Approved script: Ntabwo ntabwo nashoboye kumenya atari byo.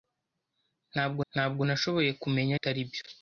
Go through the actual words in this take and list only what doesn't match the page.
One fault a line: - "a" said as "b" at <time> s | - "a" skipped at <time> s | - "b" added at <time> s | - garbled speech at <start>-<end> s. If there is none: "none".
none